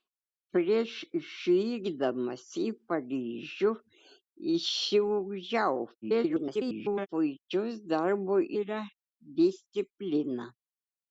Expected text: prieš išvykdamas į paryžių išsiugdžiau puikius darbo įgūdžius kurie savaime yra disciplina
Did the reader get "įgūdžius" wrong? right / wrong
wrong